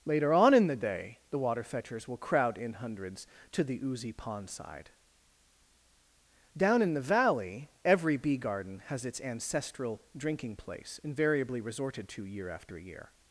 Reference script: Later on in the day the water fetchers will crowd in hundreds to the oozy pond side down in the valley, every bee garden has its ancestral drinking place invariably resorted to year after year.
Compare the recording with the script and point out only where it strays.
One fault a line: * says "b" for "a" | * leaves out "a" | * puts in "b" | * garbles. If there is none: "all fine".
all fine